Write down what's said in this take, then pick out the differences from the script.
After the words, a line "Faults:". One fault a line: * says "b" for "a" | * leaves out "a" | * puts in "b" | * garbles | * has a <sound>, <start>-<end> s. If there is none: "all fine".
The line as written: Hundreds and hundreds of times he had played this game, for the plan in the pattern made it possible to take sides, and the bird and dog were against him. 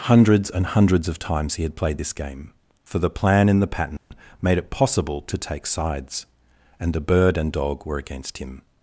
Hundreds and hundreds of times he had played this game, for the plan in the pattern made it possible to take sides, and the bird and dog were against him.
Faults:
* has a dropout, 4.0-4.1 s